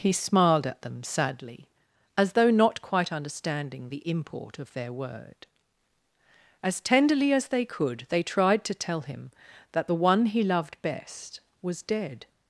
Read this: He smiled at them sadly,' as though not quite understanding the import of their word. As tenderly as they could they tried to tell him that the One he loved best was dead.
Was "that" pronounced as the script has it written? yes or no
yes